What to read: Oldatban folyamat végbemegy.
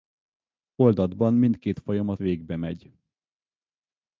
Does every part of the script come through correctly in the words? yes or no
no